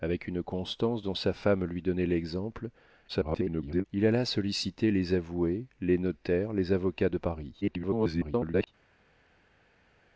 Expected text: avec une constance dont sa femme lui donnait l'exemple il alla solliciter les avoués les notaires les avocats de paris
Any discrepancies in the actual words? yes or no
yes